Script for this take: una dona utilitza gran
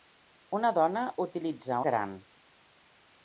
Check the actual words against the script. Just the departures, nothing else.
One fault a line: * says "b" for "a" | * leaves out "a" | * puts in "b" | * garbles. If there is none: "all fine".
all fine